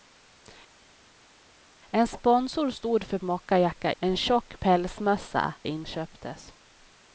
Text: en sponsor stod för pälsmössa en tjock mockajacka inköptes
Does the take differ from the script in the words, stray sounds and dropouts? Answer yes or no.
yes